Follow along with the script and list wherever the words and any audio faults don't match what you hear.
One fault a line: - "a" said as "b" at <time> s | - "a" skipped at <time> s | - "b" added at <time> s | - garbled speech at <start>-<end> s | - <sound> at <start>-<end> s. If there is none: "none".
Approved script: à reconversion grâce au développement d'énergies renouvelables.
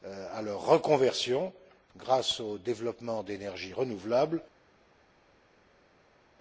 - "leur" added at 0.4 s